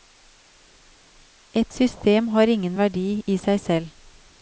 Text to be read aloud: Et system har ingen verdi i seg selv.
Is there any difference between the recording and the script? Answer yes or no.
no